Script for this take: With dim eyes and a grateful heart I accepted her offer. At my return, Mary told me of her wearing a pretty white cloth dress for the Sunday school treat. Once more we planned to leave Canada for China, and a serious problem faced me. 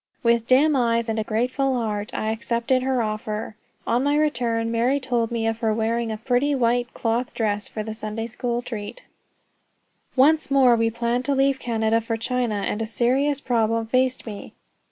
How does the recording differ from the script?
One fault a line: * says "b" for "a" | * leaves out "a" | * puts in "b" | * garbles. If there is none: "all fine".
* says "On" for "At"